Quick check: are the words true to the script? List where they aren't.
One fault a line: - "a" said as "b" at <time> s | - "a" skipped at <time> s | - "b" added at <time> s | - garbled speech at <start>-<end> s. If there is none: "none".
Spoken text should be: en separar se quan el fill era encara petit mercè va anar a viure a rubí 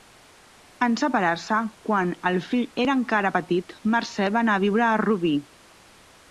none